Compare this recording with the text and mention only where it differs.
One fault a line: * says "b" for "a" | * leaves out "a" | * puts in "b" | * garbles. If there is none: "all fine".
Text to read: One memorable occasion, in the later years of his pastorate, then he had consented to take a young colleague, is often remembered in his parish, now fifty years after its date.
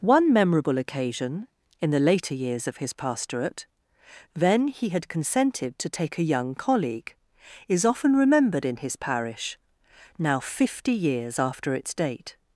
all fine